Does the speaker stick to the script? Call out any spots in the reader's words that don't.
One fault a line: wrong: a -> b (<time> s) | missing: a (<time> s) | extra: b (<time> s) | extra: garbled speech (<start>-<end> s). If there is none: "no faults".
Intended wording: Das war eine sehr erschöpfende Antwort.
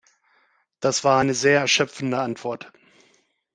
no faults